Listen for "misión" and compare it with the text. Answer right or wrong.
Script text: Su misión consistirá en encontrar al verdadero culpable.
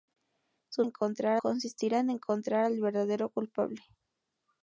wrong